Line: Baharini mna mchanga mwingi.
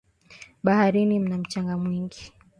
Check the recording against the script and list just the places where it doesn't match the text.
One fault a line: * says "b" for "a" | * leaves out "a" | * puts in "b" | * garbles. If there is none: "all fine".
all fine